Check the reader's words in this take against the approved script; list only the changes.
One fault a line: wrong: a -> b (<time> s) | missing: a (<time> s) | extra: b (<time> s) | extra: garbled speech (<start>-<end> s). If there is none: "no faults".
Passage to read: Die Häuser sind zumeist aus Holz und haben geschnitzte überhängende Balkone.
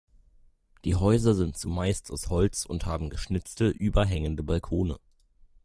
no faults